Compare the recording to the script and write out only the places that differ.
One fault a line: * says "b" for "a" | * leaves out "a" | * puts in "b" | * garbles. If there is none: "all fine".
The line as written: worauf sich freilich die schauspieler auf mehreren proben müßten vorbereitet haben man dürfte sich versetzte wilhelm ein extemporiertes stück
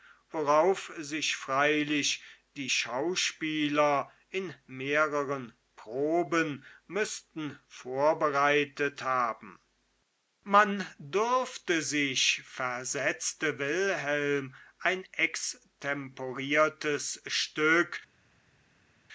* says "in" for "auf"